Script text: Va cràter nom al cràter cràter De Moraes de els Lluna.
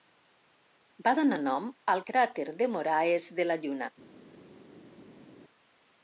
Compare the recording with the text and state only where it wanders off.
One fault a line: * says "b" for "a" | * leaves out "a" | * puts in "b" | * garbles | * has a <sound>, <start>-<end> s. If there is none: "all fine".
* says "donar" for "cràter"
* leaves out "cràter"
* says "la" for "els"